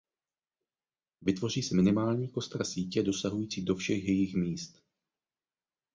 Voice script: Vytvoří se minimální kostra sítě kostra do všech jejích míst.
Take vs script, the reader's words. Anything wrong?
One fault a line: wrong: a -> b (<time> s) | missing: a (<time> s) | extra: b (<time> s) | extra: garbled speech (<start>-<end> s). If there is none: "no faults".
wrong: kostra -> dosahující (3.0 s)